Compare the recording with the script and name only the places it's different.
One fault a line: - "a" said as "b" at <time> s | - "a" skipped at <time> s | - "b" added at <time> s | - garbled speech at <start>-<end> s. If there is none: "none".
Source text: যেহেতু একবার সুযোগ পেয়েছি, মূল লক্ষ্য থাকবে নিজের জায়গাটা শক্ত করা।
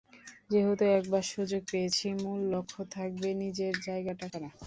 - "শক্ত" skipped at 4.3 s